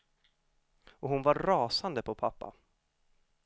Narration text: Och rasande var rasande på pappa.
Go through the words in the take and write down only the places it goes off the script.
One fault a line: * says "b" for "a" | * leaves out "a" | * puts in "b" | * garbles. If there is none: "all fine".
* says "hon" for "rasande"